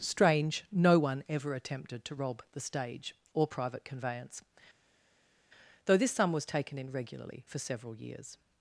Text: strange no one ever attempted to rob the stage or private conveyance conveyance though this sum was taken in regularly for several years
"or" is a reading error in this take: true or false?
false